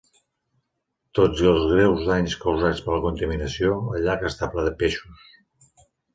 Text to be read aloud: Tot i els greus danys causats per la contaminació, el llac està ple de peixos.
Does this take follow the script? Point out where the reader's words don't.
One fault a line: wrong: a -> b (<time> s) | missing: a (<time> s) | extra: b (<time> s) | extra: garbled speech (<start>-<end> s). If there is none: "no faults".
no faults